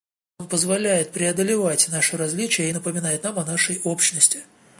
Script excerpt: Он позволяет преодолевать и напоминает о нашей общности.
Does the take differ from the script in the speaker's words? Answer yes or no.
yes